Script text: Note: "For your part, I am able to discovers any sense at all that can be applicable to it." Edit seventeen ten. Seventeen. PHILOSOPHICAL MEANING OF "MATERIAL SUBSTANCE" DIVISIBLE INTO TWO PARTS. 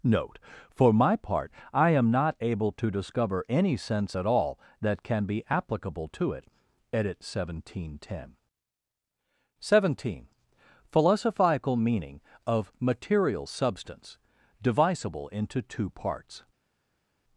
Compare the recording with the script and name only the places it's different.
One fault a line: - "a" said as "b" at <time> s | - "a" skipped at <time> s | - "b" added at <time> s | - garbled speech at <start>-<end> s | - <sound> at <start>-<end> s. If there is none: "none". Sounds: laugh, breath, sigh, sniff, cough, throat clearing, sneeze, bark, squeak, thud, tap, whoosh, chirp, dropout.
- "your" said as "my" at 0.9 s
- "not" added at 2.1 s
- "discovers" said as "discover" at 2.9 s